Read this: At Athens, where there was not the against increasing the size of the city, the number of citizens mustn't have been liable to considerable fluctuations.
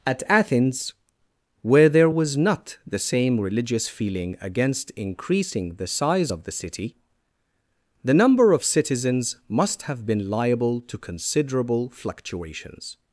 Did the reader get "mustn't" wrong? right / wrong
wrong